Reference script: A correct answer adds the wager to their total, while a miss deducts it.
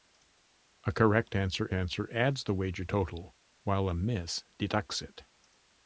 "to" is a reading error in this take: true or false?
true